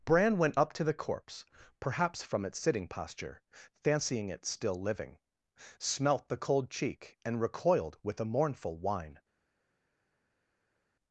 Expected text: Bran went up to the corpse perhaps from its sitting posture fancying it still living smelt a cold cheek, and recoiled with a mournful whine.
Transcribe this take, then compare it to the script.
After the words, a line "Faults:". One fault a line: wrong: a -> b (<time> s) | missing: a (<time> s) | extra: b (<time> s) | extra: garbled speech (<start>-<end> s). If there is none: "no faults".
Bran went up to the corpse perhaps from its sitting posture fancying it still living smelt the cold cheek, and recoiled with a mournful whine.
Faults:
wrong: a -> the (6.3 s)